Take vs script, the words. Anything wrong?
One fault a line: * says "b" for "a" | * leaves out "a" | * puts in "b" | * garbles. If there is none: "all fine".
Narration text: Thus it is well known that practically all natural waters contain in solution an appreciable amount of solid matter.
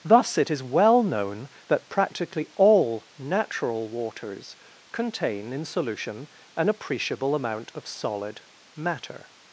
all fine